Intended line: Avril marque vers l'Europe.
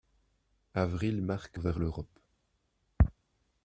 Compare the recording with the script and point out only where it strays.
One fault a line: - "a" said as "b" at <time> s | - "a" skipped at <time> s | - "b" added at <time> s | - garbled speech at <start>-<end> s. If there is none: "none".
none